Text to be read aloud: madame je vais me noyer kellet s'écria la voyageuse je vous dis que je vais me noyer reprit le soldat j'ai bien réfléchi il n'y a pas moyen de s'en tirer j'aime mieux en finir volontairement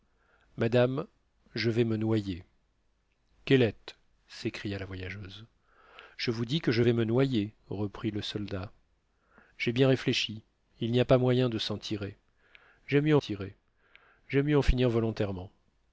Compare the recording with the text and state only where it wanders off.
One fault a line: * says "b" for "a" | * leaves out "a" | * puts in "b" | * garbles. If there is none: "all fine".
* puts in "tirer j'aime mieux"